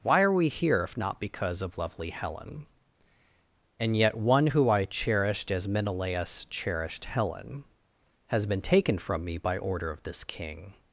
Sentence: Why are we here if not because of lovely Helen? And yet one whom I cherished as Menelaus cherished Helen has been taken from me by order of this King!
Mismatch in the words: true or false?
true